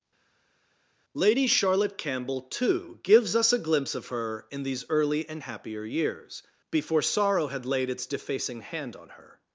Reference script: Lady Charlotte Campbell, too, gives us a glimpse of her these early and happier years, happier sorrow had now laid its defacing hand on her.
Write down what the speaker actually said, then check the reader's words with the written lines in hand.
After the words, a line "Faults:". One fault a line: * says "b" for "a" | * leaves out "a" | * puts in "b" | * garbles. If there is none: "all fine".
Lady Charlotte Campbell, too, gives us a glimpse of her in these early and happier years, before sorrow had laid its defacing hand on her.
Faults:
* puts in "in"
* says "before" for "happier"
* leaves out "now"